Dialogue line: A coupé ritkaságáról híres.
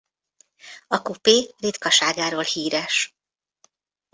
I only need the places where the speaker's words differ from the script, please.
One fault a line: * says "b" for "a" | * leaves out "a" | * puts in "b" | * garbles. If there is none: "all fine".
all fine